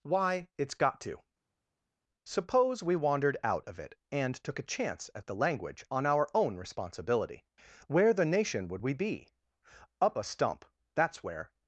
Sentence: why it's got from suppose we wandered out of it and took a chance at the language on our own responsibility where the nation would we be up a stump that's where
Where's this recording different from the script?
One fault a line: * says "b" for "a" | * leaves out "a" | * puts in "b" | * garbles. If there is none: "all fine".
* says "to" for "from"